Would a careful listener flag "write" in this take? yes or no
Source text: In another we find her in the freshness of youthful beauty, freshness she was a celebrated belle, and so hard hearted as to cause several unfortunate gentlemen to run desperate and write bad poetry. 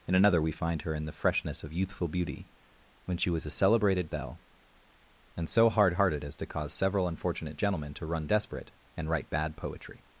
no